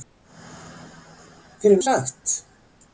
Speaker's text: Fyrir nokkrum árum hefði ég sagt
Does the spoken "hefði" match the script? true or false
false